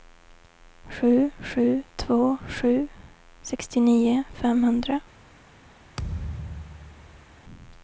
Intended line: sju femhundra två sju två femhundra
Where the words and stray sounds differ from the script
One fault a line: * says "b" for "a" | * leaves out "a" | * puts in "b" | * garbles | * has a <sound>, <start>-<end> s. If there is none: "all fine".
* says "sju" for "femhundra"
* says "sextionio" for "två"
* has a thud, 6.0-7.4 s